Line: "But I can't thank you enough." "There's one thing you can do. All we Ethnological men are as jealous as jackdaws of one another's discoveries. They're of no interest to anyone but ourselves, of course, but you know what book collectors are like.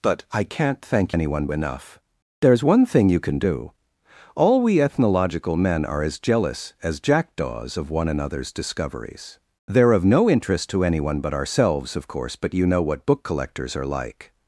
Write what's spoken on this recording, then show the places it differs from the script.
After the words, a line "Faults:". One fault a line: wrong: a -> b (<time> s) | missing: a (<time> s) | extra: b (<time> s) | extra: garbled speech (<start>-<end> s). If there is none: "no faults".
"But I can't thank anyone enough." "There's one thing you can do. All we Ethnological men are as jealous as jackdaws of one another's discoveries. They're of no interest to anyone but ourselves, of course, but you know what book collectors are like.
Faults:
wrong: you -> anyone (1.1 s)